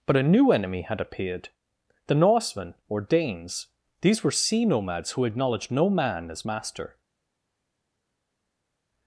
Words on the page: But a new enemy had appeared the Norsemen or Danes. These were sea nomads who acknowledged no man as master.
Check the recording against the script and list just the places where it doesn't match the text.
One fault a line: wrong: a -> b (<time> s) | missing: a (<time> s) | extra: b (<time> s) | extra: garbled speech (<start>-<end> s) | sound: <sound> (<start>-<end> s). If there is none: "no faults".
no faults